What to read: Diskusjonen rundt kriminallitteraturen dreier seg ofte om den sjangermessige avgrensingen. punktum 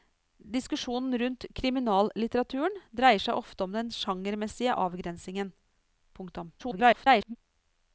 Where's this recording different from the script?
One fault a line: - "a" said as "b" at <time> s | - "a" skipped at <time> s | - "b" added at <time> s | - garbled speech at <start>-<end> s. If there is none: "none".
- garbled speech at 6.6-7.4 s